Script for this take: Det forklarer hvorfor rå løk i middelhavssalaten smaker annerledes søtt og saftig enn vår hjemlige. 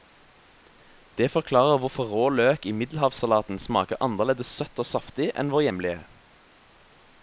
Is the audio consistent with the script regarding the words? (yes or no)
yes